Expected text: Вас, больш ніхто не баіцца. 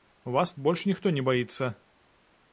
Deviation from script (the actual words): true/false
false